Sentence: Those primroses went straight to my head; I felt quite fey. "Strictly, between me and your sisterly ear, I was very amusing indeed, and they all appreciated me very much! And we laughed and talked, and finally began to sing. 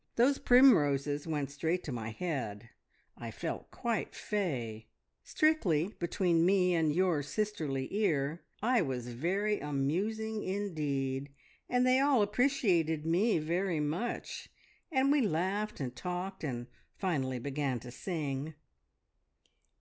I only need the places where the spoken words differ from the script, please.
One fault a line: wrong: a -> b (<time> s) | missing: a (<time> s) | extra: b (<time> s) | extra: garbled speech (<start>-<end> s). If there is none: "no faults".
no faults